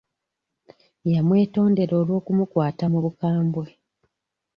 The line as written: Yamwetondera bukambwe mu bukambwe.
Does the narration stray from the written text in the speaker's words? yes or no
yes